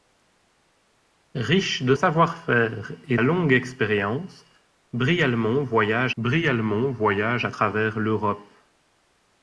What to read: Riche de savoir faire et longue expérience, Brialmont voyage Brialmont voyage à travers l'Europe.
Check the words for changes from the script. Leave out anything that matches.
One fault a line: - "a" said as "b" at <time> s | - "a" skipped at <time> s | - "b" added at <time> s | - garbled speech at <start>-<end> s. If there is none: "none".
none